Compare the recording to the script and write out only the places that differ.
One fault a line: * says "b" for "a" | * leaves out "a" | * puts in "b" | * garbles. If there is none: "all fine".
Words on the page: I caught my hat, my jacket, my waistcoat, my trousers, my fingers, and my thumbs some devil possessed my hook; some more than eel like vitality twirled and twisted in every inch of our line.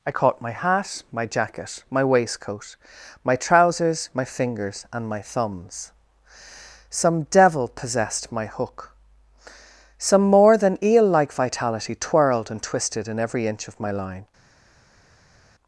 * says "my" for "our"